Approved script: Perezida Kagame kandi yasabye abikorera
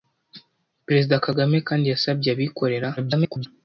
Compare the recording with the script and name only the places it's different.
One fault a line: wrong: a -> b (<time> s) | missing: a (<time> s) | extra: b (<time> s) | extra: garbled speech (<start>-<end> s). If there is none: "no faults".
extra: garbled speech (3.0-3.5 s)